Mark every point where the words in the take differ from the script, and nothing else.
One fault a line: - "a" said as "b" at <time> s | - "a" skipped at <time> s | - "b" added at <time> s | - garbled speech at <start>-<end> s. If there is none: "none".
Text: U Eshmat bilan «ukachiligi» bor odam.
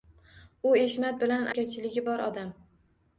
none